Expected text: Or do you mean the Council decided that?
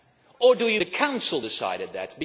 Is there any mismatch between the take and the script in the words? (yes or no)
yes